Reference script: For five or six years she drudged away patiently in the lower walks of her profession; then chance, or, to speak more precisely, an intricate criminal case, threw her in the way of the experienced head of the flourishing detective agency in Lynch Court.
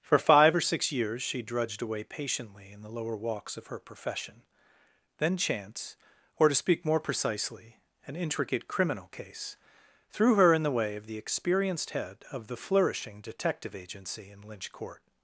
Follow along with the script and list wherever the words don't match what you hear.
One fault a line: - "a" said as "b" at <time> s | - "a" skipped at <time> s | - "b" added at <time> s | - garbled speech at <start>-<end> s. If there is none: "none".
none